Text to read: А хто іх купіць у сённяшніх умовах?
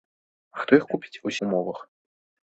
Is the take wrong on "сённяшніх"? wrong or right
wrong